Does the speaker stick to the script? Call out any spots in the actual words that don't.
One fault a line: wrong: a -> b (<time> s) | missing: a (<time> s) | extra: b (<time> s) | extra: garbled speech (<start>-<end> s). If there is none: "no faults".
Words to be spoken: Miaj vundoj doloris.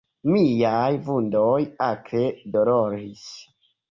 extra: akre (1.9 s)